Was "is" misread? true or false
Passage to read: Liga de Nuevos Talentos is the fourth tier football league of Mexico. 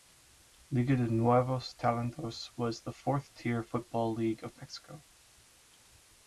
true